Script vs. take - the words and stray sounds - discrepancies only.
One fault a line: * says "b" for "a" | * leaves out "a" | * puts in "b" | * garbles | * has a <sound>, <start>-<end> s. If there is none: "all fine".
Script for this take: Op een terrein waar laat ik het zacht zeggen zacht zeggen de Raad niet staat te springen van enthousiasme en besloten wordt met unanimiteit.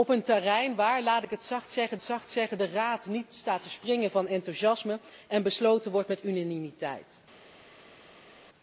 all fine